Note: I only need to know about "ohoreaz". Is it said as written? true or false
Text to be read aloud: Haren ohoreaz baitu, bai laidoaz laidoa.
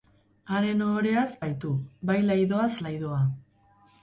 true